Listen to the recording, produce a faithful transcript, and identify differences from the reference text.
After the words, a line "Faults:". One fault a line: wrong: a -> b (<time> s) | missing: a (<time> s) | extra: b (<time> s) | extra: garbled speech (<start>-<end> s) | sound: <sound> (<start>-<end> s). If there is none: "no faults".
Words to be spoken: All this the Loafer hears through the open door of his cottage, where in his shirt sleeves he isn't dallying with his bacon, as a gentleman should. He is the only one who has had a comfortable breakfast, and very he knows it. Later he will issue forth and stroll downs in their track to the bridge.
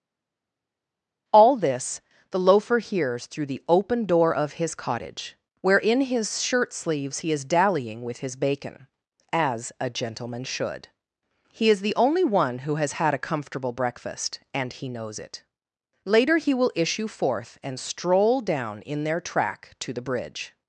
All this the Loafer hears through the open door of his cottage, where in his shirt sleeves he is dallying with his bacon, as a gentleman should. He is the only one who has had a comfortable breakfast, and he knows it. Later he will issue forth and stroll down in their track to the bridge.
Faults:
wrong: isn't -> is (7.3 s)
missing: very (14.7 s)
wrong: downs -> down (18.4 s)